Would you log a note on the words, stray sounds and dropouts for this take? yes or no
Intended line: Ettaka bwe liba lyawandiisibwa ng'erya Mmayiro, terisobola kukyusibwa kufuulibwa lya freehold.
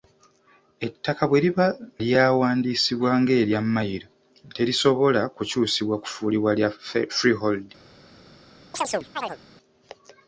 yes